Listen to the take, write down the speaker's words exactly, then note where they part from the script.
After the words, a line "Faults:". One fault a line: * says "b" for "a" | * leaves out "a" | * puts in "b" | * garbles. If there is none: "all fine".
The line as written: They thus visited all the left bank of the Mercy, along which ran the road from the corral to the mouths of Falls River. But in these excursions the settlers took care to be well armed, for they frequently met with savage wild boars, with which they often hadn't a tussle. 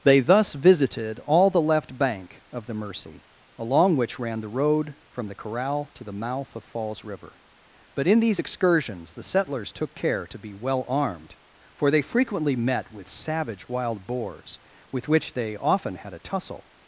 They thus visited all the left bank of the Mercy, along which ran the road from the corral to the mouth of Falls River. But in these excursions the settlers took care to be well armed, for they frequently met with savage wild boars, with which they often had a tussle.
Faults:
* says "mouth" for "mouths"
* says "had" for "hadn't"